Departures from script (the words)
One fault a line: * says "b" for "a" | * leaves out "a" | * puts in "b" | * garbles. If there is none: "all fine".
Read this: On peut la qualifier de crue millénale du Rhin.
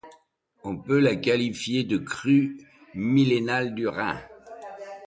all fine